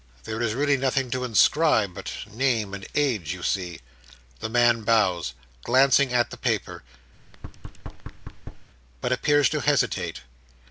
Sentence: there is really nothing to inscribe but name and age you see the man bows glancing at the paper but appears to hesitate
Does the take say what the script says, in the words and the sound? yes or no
no